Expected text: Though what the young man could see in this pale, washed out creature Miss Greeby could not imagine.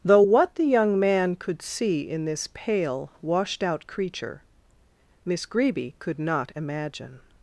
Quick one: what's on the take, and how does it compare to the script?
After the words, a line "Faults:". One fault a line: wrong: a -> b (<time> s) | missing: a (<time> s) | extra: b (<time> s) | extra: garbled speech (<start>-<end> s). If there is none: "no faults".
Though what the young man could see in this pale, washed out creature Miss Greeby could not imagine.
Faults:
no faults